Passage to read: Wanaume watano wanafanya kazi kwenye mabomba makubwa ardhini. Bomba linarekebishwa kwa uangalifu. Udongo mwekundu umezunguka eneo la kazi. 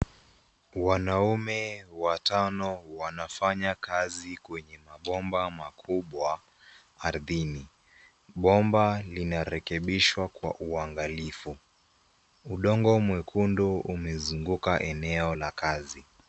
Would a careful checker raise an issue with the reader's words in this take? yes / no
no